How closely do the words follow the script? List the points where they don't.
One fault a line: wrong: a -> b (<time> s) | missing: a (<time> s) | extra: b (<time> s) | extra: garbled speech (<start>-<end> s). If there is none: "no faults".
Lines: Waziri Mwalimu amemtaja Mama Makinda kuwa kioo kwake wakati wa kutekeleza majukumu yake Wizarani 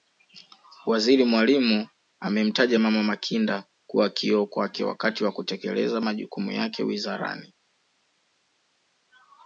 no faults